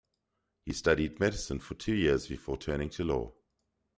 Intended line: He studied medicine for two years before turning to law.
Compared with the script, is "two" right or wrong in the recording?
right